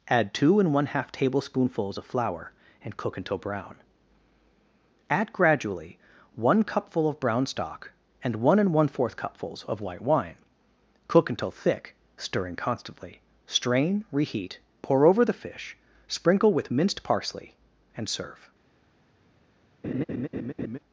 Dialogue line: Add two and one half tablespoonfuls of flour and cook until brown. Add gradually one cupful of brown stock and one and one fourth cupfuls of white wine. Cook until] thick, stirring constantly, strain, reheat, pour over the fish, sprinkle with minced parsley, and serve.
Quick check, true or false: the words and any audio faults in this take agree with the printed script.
false